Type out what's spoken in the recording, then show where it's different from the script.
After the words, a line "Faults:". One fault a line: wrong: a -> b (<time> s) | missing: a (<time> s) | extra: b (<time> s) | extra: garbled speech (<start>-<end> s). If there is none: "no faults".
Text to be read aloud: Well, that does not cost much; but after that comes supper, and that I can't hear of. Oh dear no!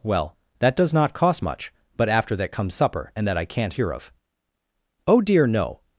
Well, that does not cost much; but after that comes supper, and that I can't hear of. Oh dear no!
Faults:
no faults